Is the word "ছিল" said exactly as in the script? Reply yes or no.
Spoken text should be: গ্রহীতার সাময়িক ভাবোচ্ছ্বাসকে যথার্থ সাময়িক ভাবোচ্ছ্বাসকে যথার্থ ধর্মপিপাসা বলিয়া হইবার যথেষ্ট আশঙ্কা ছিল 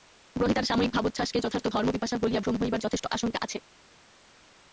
no